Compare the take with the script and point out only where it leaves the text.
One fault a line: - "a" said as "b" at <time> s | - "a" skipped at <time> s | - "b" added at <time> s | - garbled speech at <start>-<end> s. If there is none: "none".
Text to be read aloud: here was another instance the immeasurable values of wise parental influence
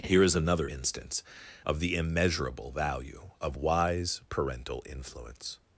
- "was" said as "is" at 0.2 s
- "of" added at 1.6 s
- "values" said as "value" at 2.7 s